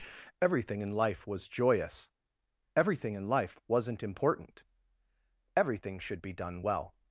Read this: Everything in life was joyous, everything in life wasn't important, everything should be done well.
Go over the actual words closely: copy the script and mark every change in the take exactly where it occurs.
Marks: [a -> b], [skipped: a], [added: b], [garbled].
Everything in life was joyous, everything in life wasn't important, everything should be done well.